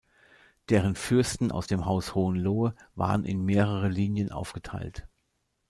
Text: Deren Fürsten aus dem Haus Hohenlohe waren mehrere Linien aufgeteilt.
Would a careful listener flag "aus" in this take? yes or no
no